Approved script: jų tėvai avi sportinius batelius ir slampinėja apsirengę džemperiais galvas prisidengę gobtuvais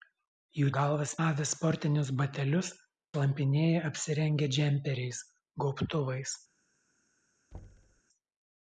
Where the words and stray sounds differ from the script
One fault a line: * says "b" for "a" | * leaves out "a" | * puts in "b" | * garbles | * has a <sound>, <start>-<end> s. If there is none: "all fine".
* says "galvas" for "tėvai"
* leaves out "ir"
* leaves out "galvas prisidengę"
* has a thud, 7.5-8.0 s